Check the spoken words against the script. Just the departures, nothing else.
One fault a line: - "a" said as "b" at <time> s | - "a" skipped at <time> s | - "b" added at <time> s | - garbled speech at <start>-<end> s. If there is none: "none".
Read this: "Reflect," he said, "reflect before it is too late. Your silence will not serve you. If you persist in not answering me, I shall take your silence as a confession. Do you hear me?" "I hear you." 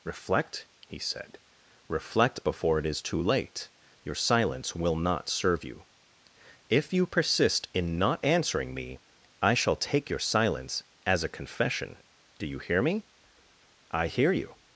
none